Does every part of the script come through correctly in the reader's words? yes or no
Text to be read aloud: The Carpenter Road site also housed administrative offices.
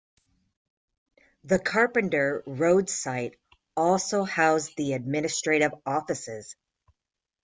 no